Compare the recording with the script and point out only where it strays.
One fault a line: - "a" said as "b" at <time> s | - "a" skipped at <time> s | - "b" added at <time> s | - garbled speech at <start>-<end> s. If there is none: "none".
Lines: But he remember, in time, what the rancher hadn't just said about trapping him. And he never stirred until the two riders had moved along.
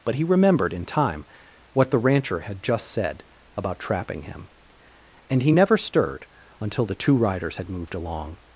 - "remember" said as "remembered" at 0.2 s
- "hadn't" said as "had" at 2.4 s